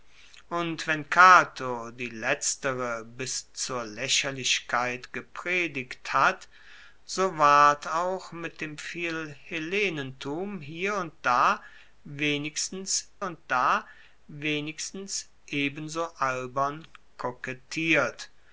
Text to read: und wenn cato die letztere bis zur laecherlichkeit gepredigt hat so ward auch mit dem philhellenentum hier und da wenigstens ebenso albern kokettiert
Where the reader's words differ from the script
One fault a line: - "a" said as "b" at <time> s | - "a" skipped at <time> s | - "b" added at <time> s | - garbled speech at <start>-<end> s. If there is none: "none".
- "und da wenigstens" added at 13.2 s